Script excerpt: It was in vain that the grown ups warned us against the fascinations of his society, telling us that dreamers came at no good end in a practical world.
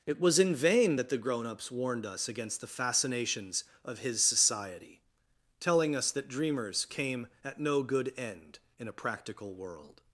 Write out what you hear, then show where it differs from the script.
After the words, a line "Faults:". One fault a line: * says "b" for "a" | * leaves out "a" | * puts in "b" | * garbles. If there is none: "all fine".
It was in vain that the grown ups warned us against the fascinations of his society, telling us that dreamers came at no good end in a practical world.
Faults:
all fine